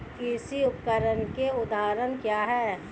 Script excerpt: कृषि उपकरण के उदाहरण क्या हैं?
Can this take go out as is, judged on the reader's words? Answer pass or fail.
pass